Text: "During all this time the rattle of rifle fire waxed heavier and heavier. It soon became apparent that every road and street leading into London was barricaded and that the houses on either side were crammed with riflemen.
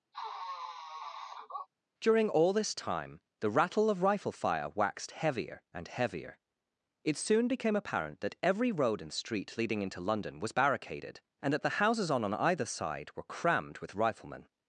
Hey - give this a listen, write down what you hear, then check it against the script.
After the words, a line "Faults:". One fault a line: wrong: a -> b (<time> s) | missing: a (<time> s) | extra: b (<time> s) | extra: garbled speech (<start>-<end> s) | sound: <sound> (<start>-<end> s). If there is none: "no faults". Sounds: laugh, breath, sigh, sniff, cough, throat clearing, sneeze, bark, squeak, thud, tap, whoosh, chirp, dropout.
"During all this time the rattle of rifle fire waxed heavier and heavier. It soon became apparent that every road and street leading into London was barricaded and that the houses on on either side were crammed with riflemen.
Faults:
sound: sniff (0.1-1.7 s)
extra: on (12.2 s)